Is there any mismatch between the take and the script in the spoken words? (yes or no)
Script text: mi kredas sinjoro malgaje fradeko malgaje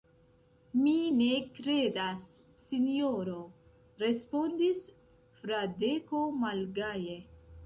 yes